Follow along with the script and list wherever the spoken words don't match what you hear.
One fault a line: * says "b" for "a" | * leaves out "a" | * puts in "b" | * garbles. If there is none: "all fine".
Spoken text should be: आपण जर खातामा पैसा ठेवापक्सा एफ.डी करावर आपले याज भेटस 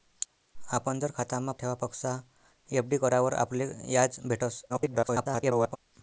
* leaves out "पैसा"
* garbles